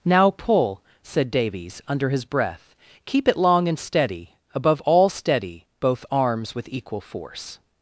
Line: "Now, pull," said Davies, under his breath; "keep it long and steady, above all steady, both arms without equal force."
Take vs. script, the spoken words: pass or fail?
fail